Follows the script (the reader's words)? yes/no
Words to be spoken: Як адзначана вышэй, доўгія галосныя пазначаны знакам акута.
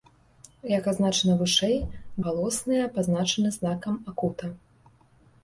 no